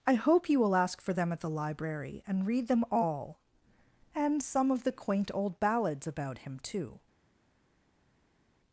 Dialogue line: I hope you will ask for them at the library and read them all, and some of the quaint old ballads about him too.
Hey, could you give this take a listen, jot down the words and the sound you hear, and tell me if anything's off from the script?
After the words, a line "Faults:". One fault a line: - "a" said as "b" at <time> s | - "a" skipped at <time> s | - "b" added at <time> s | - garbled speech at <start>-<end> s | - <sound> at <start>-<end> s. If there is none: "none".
I hope you will ask for them at the library and read them all, and some of the quaint old ballads about him too.
Faults:
none